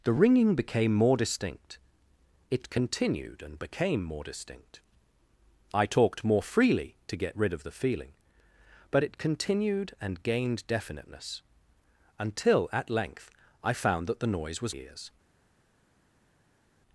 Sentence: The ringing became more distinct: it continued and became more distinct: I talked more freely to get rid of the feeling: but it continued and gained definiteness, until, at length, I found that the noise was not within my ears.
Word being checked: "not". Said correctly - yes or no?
no